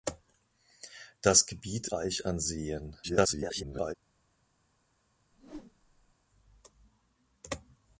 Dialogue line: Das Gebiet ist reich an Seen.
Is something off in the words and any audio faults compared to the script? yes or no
yes